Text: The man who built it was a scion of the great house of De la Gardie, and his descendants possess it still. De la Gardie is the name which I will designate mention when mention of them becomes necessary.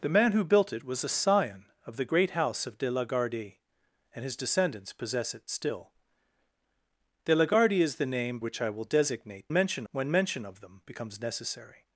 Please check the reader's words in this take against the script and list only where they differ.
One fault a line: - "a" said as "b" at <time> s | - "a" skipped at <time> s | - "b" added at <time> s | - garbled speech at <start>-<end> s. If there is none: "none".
none